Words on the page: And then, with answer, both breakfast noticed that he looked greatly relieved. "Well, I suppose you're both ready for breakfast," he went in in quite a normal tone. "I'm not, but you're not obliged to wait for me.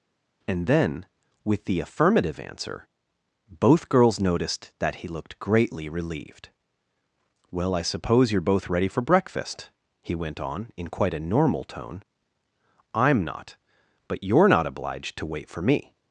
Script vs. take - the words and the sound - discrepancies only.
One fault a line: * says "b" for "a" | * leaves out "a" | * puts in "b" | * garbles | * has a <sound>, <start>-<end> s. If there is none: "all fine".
* puts in "the affirmative"
* says "girls" for "breakfast"
* says "on" for "in"